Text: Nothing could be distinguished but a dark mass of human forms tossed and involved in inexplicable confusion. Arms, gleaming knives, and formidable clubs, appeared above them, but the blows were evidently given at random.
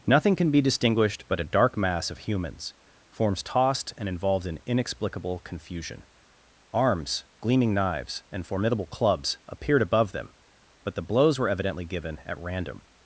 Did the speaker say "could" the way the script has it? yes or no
no